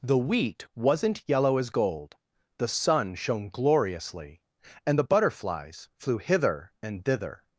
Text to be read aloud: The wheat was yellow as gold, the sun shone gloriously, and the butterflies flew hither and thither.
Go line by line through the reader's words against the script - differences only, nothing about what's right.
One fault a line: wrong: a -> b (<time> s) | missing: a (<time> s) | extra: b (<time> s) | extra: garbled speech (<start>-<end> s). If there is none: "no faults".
wrong: was -> wasn't (0.8 s)